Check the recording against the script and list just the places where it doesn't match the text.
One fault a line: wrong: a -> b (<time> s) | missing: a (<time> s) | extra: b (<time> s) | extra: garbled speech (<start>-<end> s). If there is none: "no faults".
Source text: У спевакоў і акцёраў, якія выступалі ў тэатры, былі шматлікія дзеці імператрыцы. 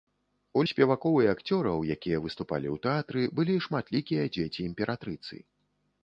no faults